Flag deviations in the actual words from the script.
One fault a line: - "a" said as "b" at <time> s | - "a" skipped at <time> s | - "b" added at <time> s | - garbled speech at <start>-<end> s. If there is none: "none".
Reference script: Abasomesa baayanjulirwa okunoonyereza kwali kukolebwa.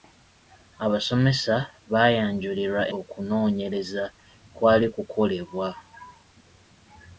none